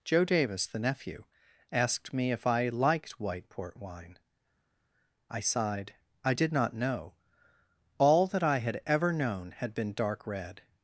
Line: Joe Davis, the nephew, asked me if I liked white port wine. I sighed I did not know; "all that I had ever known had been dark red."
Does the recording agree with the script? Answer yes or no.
yes